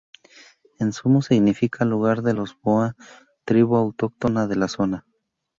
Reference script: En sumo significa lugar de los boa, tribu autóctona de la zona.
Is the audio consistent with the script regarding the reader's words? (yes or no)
yes